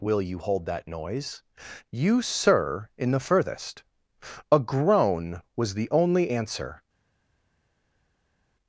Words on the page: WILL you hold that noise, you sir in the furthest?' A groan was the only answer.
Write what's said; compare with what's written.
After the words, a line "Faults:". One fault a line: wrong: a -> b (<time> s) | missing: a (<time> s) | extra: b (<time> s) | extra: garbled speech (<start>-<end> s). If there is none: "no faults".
WILL you hold that noise, you sir in the furthest?' A groan was the only answer.
Faults:
no faults